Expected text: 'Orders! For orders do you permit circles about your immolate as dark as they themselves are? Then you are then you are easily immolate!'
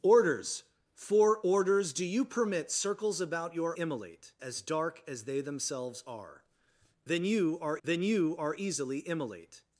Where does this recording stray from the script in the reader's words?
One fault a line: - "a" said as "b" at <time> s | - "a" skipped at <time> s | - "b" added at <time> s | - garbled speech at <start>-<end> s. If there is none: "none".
none